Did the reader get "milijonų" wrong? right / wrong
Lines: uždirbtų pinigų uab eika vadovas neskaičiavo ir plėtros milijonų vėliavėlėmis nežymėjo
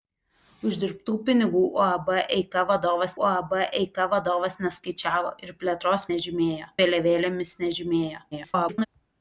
wrong